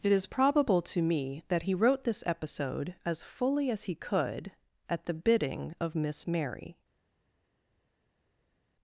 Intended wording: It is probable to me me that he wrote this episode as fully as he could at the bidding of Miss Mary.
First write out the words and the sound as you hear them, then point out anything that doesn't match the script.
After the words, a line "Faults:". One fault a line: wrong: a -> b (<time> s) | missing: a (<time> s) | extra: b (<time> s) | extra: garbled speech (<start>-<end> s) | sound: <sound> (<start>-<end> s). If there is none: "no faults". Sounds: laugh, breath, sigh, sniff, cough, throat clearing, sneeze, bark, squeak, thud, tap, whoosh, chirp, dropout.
It is probable to me that he wrote this episode as fully as he could at the bidding of Miss Mary.
Faults:
missing: me (1.4 s)